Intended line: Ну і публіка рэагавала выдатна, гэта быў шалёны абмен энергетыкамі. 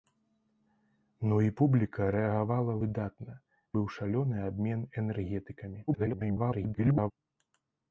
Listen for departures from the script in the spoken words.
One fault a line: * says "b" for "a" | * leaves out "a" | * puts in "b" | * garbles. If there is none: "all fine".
* leaves out "гэта"
* garbles